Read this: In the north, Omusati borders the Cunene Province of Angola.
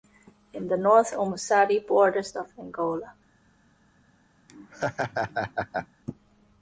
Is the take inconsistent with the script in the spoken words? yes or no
yes